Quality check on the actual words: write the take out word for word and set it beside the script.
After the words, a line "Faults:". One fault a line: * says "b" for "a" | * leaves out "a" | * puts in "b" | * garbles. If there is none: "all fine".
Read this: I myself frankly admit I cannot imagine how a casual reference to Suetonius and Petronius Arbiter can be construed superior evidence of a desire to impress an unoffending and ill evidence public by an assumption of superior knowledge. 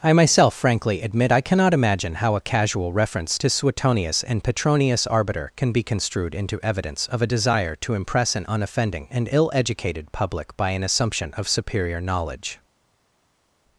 I myself frankly admit I cannot imagine how a casual reference to Suetonius and Petronius Arbiter can be construed into evidence of a desire to impress an unoffending and ill educated public by an assumption of superior knowledge.
Faults:
* says "into" for "superior"
* says "educated" for "evidence"